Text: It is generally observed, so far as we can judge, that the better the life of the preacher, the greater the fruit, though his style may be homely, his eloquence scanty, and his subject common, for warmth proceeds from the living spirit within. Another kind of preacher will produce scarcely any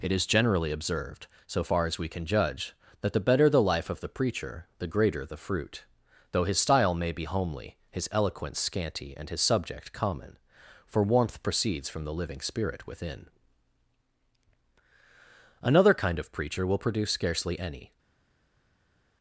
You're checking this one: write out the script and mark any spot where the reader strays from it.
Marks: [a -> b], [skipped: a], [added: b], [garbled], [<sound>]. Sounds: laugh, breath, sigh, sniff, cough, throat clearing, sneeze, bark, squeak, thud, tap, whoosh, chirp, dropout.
It is generally observed, so far as we can judge, that the better the life of the preacher, the greater the fruit, though his style may be homely, his eloquence scanty, and his subject common, for warmth proceeds from the living spirit within. Another kind of preacher will produce scarcely any